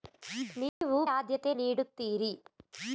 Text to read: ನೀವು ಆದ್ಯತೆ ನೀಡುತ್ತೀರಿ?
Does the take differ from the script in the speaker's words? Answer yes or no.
no